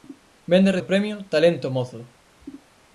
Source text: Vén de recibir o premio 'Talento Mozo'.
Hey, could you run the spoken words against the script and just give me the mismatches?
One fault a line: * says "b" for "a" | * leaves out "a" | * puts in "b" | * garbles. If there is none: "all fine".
* leaves out "recibir"